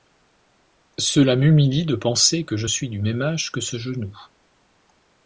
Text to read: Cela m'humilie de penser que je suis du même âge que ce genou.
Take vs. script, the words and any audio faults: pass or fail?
pass